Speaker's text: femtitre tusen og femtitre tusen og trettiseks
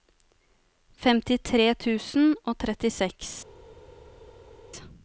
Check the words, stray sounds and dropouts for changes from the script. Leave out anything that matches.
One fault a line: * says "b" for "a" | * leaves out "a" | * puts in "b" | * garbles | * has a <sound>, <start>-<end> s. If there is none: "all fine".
* leaves out "femtitre tusen og"